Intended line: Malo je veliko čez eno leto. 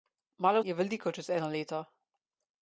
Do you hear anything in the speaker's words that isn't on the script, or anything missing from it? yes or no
no